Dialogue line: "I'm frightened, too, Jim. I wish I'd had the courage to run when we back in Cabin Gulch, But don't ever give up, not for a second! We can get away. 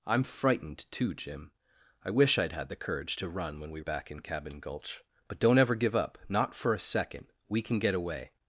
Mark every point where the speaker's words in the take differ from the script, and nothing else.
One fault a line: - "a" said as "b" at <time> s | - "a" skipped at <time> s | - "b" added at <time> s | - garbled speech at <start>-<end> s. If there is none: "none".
none